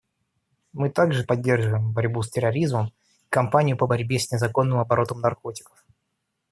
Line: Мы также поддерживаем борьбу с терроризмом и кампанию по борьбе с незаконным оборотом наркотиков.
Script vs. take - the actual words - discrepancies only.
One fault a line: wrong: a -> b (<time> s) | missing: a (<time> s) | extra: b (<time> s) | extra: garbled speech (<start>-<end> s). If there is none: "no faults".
no faults